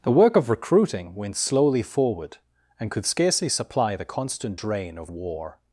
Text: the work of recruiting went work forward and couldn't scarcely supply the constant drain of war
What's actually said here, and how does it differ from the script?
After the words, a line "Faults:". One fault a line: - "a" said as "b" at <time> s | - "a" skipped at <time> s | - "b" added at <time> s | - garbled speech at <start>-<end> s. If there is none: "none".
the work of recruiting went slowly forward and could scarcely supply the constant drain of war
Faults:
- "work" said as "slowly" at 1.3 s
- "couldn't" said as "could" at 2.9 s